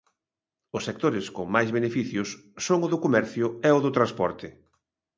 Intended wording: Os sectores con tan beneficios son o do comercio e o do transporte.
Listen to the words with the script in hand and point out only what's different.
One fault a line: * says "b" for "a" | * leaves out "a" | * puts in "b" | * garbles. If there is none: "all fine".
* says "máis" for "tan"